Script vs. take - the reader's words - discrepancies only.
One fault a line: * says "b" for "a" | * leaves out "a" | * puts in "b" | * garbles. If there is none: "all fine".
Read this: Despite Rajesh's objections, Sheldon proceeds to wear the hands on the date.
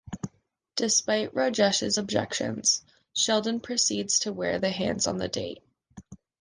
all fine